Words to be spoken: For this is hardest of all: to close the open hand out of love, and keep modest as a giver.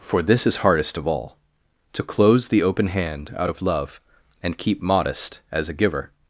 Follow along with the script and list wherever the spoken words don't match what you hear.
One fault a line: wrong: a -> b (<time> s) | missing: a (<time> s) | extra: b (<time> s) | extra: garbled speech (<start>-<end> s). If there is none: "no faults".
no faults